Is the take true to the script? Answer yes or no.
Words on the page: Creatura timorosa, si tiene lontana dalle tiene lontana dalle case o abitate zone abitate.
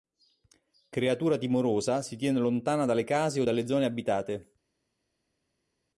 no